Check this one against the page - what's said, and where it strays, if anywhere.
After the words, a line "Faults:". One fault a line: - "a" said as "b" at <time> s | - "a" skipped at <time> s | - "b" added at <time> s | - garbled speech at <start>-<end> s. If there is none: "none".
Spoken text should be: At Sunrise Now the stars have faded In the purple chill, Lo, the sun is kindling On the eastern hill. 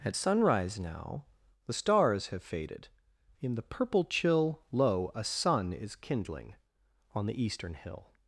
At Sunrise Now the stars have faded In the purple chill, Lo, a sun is kindling On the eastern hill.
Faults:
- "the" said as "a" at 5.1 s